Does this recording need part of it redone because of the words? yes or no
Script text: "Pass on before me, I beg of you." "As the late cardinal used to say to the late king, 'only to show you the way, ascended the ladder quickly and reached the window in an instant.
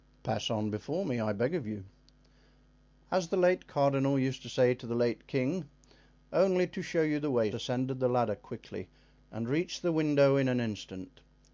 no